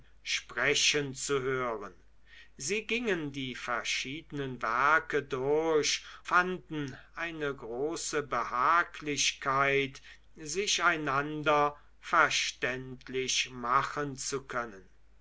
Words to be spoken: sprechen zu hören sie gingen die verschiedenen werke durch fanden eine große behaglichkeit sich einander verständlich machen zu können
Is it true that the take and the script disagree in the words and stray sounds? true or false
false